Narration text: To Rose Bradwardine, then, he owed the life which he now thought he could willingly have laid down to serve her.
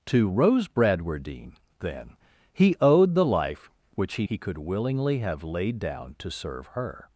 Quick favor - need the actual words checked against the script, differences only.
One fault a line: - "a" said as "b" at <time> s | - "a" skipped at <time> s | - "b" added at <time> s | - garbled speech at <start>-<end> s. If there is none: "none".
- "now thought" skipped at 4.3 s